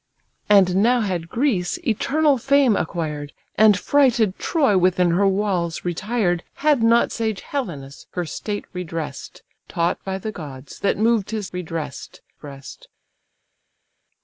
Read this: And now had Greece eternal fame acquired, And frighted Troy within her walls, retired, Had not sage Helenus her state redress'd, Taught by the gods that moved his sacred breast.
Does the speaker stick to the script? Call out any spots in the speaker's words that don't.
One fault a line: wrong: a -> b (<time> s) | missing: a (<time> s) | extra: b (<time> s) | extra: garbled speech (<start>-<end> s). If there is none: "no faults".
wrong: sacred -> redress'd (11.5 s)